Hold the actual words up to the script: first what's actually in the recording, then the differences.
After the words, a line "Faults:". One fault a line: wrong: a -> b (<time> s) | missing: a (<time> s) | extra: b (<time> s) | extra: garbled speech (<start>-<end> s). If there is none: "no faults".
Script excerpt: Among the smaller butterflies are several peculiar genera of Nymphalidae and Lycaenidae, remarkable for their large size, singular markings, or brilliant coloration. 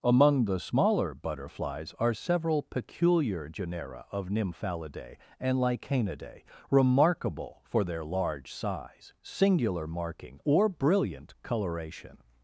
Among the smaller butterflies are several peculiar genera of Nymphalidae and Lycaenidae, remarkable for their large size, singular marking, or brilliant coloration.
Faults:
wrong: markings -> marking (9.9 s)